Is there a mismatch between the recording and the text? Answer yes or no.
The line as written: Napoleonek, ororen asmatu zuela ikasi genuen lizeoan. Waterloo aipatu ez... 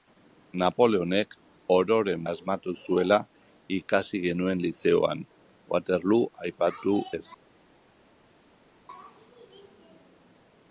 no